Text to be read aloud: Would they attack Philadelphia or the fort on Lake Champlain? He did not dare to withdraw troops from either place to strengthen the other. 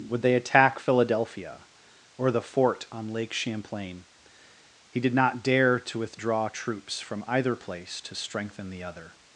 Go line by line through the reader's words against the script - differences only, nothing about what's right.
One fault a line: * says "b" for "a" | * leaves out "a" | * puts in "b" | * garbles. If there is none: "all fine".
all fine